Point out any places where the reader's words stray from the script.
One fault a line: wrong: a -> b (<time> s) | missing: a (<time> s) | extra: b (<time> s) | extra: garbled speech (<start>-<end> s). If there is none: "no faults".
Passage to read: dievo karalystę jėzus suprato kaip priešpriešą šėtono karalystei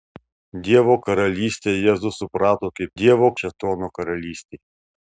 wrong: priešpriešą -> dievo (3.0 s)